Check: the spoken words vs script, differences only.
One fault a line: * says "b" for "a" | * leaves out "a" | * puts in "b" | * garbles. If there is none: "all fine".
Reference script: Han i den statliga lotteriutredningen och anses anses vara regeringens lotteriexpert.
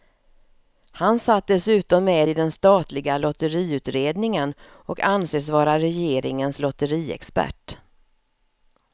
* puts in "satt dessutom med"
* leaves out "anses"